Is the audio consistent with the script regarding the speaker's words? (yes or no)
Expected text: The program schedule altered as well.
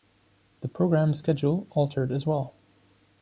yes